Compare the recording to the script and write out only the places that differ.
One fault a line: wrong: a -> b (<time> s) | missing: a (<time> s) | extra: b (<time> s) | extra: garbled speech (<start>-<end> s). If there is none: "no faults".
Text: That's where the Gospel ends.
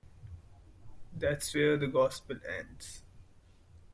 no faults